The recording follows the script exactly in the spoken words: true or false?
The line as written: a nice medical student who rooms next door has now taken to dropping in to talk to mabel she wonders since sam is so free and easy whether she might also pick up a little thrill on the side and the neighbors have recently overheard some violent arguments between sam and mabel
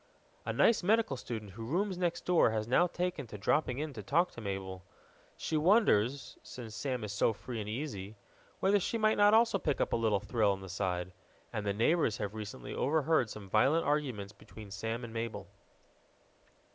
false